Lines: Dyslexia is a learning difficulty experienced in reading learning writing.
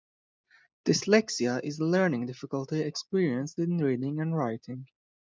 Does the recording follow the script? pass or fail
fail